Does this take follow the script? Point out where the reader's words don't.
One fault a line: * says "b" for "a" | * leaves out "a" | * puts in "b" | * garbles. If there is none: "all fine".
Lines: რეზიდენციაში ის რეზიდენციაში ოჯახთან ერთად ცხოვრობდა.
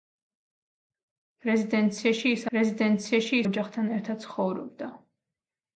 all fine